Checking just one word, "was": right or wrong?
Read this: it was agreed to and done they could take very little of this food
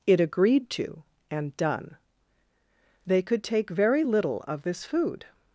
wrong